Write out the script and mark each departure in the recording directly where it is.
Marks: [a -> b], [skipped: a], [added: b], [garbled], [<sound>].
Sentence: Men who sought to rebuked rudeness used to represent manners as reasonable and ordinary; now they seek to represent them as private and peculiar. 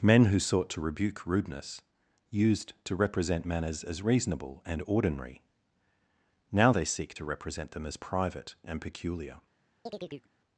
Men who sought to [rebuked -> rebuke] rudeness used to represent manners as reasonable and ordinary; now they seek to represent them as private and peculiar. [chirp]